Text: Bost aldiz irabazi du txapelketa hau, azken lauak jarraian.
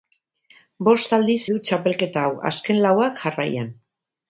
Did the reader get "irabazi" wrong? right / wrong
wrong